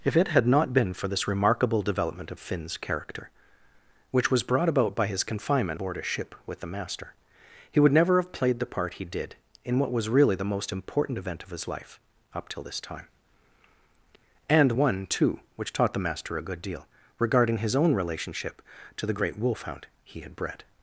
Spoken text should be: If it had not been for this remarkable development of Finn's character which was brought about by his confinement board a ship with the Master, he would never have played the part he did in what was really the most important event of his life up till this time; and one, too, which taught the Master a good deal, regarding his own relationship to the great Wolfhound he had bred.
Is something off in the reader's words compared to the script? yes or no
no